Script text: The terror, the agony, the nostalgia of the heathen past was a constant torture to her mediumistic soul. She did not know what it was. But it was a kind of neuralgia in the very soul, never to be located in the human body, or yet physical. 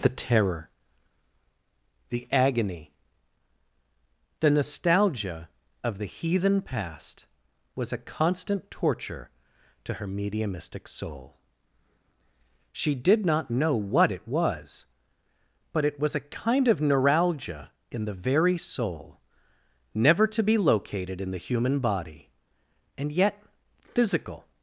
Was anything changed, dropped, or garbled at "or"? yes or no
yes